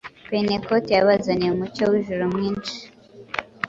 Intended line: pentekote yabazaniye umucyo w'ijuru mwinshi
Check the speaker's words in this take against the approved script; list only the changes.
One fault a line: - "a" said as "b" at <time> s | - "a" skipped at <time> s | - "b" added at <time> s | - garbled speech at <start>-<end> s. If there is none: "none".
none